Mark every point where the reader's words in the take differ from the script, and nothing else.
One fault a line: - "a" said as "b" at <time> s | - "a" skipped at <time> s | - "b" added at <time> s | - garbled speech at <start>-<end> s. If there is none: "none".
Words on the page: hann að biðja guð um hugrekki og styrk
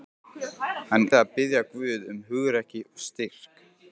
none